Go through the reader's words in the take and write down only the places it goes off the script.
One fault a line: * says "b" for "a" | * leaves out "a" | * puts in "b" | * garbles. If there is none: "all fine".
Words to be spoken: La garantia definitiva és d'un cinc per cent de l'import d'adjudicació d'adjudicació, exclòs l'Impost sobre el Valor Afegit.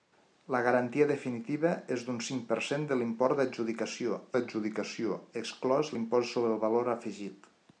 all fine